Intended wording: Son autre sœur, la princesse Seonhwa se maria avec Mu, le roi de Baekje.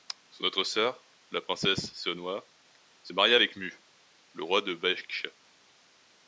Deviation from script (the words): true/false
false